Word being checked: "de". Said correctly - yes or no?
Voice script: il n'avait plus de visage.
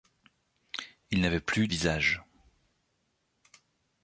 no